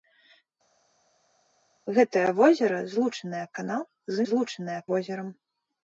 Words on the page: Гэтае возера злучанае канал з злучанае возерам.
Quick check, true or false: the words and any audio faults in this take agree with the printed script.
true